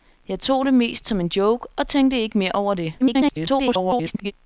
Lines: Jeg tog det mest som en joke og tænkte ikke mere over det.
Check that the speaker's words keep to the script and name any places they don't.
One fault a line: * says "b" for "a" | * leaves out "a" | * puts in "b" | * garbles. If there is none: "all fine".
* garbles